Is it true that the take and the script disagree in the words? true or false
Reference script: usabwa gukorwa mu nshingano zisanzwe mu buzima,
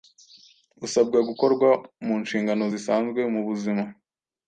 false